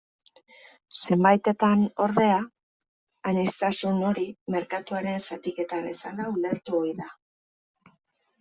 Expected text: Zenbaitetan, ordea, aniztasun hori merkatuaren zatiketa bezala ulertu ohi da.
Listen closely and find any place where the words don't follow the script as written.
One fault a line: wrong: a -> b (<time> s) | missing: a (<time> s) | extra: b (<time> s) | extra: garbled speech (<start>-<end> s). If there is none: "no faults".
no faults